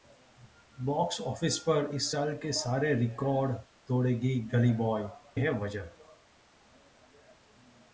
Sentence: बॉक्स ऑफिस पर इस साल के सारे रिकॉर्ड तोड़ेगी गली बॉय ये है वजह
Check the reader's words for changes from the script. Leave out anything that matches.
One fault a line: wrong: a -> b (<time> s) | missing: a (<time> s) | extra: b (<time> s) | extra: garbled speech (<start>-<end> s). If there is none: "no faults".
missing: ये (5.1 s)